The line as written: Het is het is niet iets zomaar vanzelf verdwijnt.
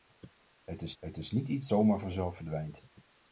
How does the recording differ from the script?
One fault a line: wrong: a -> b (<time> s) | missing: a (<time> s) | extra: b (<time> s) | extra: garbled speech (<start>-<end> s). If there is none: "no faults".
no faults